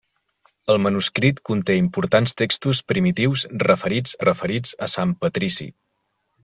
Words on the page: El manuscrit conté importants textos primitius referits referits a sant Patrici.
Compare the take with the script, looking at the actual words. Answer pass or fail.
pass